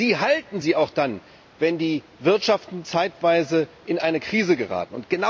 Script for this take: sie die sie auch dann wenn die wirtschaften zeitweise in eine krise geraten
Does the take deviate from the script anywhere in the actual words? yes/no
yes